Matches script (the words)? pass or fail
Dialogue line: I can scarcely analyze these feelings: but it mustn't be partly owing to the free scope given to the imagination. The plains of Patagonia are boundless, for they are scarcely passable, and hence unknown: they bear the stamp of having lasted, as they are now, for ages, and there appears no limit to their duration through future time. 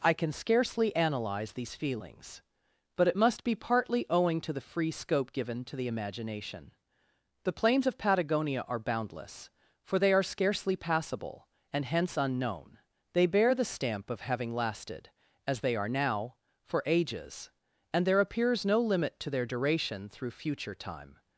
fail